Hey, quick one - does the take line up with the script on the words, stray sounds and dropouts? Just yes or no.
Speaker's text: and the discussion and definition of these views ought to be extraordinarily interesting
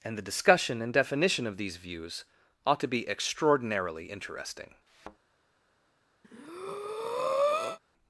no